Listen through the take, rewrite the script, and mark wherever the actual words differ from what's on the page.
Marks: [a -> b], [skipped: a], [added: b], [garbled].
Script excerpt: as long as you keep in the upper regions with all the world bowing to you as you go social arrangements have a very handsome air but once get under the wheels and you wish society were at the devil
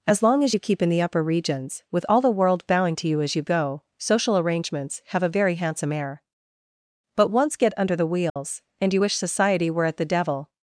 as long as you keep in the upper regions with all the world bowing to you as you go social arrangements have a very handsome air but once get under the wheels and you wish society were at the devil